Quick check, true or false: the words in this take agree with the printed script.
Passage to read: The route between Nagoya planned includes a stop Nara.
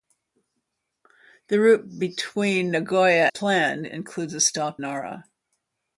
true